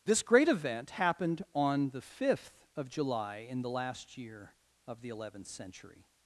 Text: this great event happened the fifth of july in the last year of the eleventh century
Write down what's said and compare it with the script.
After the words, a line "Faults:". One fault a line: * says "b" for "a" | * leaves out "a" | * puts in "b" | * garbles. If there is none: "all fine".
this great event happened on the fifth of july in the last year of the eleventh century
Faults:
* puts in "on"